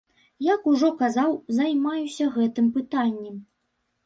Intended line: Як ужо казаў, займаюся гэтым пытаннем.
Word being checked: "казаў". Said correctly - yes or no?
yes